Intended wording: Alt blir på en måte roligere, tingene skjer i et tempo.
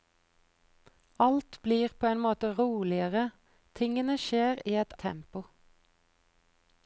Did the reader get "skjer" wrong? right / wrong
right